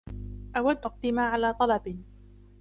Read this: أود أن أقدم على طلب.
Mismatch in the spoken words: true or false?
true